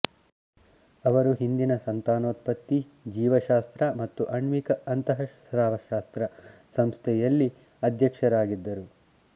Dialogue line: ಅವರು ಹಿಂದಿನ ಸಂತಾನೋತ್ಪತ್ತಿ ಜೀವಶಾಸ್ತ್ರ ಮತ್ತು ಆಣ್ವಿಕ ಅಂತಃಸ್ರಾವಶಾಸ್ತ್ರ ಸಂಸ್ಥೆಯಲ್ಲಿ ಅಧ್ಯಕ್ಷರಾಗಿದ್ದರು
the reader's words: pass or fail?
pass